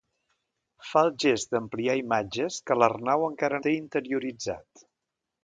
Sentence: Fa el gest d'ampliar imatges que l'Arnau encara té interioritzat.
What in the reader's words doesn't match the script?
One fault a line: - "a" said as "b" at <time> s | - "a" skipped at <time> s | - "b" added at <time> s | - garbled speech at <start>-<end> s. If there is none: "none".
none